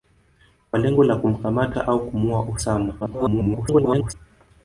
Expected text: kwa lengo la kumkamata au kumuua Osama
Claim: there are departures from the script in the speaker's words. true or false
true